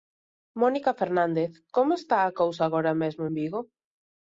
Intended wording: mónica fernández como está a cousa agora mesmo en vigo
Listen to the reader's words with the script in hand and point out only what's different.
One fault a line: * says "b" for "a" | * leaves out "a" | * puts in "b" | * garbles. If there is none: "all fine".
all fine